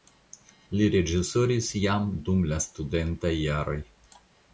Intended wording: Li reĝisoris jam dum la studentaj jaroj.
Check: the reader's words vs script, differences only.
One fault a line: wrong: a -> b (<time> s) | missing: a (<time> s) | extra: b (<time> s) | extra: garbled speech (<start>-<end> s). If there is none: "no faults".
no faults